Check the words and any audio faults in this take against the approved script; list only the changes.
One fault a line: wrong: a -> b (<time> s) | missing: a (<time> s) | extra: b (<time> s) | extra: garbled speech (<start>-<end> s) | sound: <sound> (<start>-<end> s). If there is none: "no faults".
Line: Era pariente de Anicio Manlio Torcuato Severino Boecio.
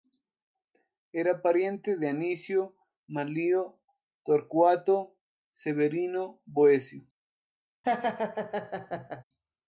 sound: laugh (7.8-9.2 s)